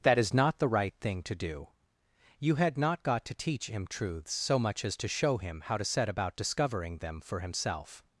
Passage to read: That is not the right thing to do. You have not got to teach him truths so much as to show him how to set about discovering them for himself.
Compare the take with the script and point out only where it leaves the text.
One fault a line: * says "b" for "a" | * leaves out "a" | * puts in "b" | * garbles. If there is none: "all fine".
* says "had" for "have"